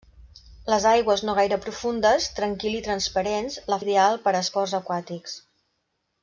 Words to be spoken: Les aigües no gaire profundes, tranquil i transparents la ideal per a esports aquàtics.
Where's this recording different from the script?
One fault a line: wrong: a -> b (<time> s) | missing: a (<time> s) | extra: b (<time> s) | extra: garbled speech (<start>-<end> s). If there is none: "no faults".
no faults